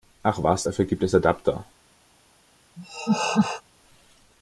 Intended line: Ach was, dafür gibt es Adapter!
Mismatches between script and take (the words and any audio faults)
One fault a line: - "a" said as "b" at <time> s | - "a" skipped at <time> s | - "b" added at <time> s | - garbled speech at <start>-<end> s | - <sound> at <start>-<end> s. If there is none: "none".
- laugh at 2.8-3.6 s